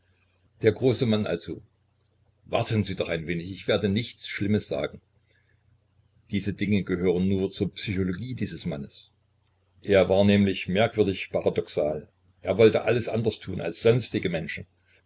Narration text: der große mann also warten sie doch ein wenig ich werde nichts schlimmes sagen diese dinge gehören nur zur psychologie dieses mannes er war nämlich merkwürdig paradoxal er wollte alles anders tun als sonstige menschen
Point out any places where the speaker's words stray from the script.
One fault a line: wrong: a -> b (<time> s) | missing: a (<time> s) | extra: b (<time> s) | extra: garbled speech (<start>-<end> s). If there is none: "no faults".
no faults